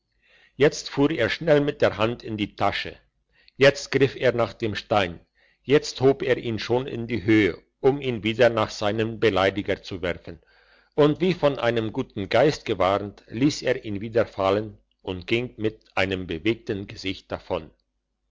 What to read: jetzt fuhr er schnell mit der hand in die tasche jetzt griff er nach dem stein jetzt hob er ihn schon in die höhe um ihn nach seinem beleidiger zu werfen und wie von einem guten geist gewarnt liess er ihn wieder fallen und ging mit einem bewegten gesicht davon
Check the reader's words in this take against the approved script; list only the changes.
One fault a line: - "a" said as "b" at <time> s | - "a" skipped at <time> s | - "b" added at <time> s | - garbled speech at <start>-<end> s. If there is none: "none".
- "wieder" added at 8.2 s